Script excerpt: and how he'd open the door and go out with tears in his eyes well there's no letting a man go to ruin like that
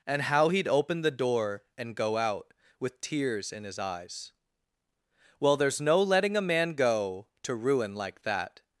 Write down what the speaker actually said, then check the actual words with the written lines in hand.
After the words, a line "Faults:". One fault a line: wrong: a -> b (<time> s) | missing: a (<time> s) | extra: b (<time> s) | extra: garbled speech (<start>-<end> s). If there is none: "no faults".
and how he'd open the door and go out with tears in his eyes well there's no letting a man go to ruin like that
Faults:
no faults